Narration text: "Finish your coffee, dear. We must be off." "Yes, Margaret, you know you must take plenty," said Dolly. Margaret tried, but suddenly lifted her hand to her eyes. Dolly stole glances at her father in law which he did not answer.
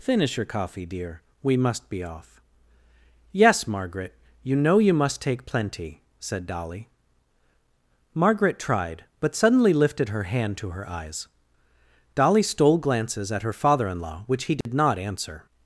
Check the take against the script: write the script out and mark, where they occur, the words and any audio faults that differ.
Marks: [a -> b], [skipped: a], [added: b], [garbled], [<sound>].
"Finish your coffee, dear. We must be off." "Yes, Margaret, you know you must take plenty," said Dolly. Margaret tried, but suddenly lifted her hand to her eyes. Dolly stole glances at her father in law which he did [dropout] not answer.